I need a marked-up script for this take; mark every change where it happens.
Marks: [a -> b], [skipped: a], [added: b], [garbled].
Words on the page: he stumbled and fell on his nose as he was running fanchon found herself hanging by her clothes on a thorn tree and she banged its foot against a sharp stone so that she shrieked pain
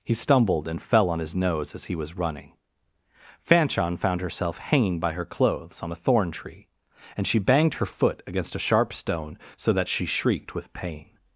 he stumbled and fell on his nose as he was running fanchon found herself hanging by her clothes on a thorn tree and she banged [its -> her] foot against a sharp stone so that she shrieked [added: with] pain